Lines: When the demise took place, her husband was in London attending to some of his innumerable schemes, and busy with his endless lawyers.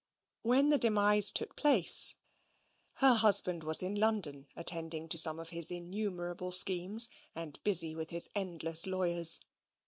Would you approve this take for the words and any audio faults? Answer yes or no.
yes